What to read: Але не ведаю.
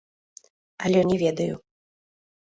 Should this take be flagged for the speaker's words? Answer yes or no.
no